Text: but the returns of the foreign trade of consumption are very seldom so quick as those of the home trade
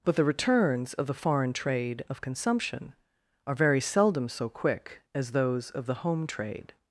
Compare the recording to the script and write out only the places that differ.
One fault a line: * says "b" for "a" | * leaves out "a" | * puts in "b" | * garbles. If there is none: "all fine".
all fine